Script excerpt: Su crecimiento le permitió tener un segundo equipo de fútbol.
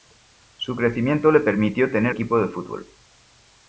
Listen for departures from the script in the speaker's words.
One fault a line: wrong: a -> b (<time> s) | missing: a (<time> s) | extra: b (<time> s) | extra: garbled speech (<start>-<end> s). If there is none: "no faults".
missing: un segundo (2.1 s)